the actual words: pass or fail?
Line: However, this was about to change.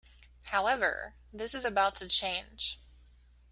fail